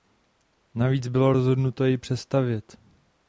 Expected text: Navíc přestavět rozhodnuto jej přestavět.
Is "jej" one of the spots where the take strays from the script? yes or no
no